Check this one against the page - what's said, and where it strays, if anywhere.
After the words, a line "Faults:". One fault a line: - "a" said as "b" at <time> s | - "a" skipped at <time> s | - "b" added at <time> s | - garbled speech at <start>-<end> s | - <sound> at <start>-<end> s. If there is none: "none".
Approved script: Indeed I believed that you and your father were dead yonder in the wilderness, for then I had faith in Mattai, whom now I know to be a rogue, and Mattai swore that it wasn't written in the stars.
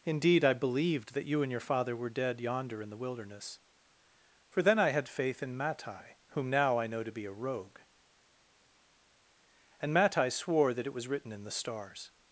Indeed I believed that you and your father were dead yonder in the wilderness, for then I had faith in Mattai, whom now I know to be a rogue, and Mattai swore that it was written in the stars.
Faults:
- "wasn't" said as "was" at 10.9 s